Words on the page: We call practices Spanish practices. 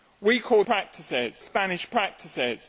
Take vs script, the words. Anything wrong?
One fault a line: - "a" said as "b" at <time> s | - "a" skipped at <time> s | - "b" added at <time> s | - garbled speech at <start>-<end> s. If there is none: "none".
none